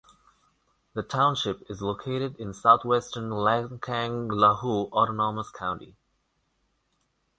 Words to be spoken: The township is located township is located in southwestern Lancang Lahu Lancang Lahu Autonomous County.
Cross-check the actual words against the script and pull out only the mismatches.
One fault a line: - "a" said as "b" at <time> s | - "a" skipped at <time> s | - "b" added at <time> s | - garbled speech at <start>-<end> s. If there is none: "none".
- "township is located" skipped at 2.4 s
- "Lancang Lahu" skipped at 4.9 s